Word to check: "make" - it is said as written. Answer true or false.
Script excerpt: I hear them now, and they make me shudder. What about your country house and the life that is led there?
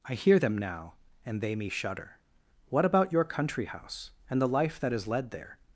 false